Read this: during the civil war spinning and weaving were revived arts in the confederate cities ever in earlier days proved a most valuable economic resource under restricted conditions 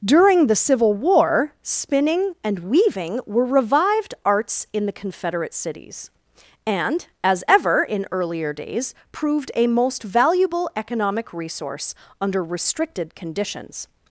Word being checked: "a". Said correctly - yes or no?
yes